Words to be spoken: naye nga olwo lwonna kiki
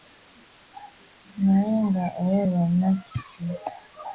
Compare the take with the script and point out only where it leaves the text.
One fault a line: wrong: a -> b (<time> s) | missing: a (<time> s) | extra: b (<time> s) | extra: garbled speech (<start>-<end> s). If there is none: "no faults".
no faults